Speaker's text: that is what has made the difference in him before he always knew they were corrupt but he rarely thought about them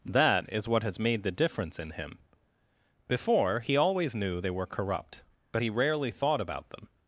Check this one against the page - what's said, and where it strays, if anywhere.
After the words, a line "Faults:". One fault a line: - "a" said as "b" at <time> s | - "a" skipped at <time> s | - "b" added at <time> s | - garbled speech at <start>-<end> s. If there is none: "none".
that is what has made the difference in him before he always knew they were corrupt but he rarely thought about them
Faults:
none